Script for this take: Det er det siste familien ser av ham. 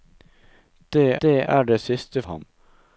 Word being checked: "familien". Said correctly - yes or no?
no